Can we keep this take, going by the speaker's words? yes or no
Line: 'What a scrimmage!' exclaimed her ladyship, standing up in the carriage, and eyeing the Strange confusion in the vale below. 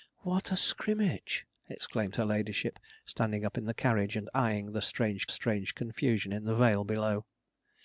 no